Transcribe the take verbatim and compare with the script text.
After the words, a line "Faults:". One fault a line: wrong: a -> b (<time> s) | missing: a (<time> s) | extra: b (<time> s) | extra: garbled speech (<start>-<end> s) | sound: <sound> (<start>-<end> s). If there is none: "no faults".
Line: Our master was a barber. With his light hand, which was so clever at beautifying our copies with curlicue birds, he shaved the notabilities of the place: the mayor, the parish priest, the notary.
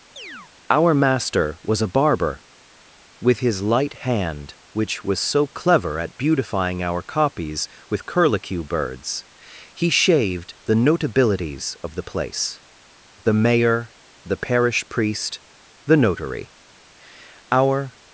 Our master was a barber. With his light hand, which was so clever at beautifying our copies with curlicue birds, he shaved the notabilities of the place: the mayor, the parish priest, the notary. Our
Faults:
sound: chirp (0.2-0.5 s)
extra: Our (17.5 s)